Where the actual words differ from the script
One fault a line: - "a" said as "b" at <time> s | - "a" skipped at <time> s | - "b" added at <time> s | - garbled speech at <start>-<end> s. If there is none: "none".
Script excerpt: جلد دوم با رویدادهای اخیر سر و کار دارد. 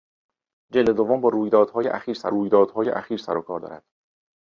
- "رویدادهای اخیر سر" added at 2.3 s